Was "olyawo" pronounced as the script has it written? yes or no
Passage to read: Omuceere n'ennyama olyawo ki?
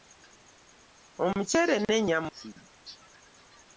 no